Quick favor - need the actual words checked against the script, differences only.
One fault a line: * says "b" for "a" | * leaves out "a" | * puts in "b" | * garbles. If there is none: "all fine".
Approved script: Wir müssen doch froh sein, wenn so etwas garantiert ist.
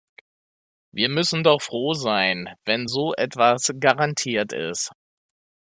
all fine